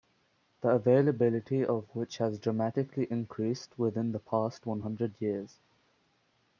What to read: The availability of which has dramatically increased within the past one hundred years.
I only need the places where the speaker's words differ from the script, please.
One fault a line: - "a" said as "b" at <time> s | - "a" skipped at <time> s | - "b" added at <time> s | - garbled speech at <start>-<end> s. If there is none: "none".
none